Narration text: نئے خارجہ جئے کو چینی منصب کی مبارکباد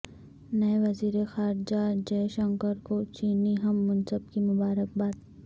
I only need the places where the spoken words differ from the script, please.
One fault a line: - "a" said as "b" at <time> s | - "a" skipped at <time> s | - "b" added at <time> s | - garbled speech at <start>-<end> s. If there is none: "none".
- "وزیر" added at 0.8 s
- "شنکر" added at 2.4 s
- "ہم" added at 3.6 s